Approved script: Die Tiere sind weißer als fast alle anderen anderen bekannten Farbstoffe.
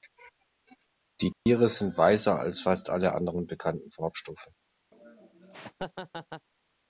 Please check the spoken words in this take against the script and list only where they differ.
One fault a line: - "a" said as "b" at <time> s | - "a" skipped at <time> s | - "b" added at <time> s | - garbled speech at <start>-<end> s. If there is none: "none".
- "anderen" skipped at 3.5 s